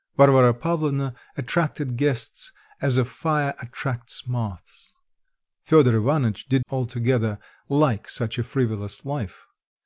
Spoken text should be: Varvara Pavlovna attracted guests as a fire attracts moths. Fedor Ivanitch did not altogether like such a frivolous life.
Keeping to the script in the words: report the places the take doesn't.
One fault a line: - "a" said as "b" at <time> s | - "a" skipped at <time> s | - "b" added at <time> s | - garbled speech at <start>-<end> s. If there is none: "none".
- "not" skipped at 6.7 s